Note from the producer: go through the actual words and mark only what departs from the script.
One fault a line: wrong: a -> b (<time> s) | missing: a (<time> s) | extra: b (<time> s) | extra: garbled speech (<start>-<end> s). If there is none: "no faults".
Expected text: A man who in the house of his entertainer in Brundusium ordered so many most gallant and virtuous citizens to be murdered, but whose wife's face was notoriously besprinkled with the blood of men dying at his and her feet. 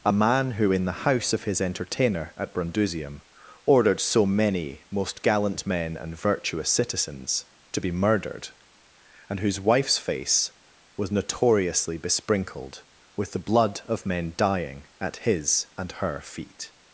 wrong: in -> at (2.4 s)
extra: men (5.7 s)
wrong: but -> and (9.3 s)